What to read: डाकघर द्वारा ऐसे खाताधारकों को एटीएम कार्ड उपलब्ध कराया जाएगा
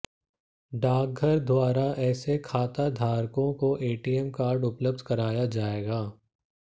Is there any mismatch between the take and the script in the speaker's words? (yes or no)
no